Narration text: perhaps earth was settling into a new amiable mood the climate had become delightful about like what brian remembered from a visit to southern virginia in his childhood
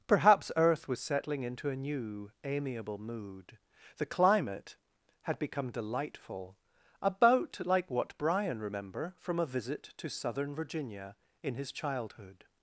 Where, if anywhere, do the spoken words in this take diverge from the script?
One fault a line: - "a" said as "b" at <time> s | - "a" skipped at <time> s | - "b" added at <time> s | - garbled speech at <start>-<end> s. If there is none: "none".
- "remembered" said as "remember" at 8.6 s